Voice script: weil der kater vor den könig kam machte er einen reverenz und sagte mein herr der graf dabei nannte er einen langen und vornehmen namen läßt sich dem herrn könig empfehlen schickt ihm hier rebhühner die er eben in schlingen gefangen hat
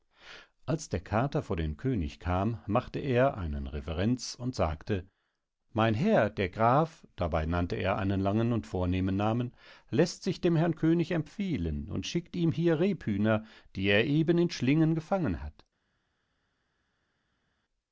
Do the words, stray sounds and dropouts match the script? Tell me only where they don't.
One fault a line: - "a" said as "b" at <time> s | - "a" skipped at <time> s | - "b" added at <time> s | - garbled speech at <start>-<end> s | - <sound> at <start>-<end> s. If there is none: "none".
- "weil" said as "als" at 0.7 s
- "und" added at 11.9 s